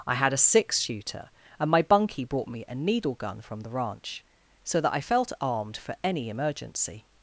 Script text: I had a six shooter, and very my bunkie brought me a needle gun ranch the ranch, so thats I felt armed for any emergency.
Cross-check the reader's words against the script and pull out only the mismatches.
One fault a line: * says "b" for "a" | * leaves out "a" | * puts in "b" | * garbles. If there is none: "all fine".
* leaves out "very"
* says "from" for "ranch"
* says "that" for "thats"